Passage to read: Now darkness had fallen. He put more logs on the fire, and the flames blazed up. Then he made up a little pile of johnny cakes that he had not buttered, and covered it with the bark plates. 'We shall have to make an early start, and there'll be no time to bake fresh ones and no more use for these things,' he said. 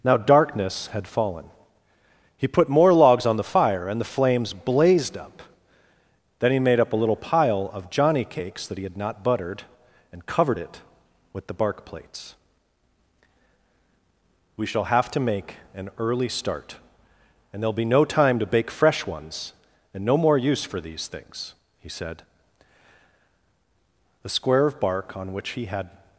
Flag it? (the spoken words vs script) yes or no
yes